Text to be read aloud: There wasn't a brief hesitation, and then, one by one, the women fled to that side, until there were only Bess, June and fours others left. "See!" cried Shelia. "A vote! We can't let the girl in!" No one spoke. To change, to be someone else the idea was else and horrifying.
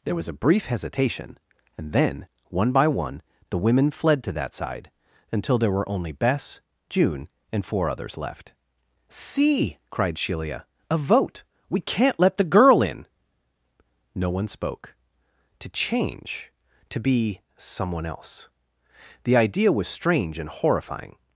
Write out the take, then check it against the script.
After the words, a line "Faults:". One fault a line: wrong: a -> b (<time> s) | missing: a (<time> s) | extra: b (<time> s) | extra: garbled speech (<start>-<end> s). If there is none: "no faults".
There was a brief hesitation, and then, one by one, the women fled to that side, until there were only Bess, June and four others left. "See!" cried Shelia. "A vote! We can't let the girl in!" No one spoke. To change, to be someone else the idea was strange and horrifying.
Faults:
wrong: wasn't -> was (0.1 s)
wrong: fours -> four (7.6 s)
wrong: else -> strange (19.9 s)